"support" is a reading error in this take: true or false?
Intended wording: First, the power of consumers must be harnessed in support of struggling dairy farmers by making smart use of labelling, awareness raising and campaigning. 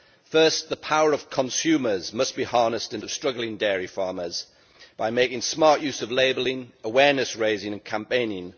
true